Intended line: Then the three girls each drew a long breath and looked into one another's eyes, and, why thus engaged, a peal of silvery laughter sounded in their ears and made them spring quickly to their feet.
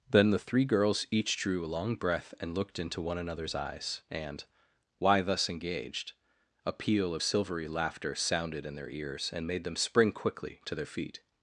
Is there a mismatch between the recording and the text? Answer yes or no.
no